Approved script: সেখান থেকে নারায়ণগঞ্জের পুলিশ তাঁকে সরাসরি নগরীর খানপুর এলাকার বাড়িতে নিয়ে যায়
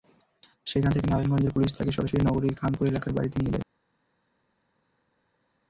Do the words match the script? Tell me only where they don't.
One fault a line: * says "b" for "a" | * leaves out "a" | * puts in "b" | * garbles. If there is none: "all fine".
all fine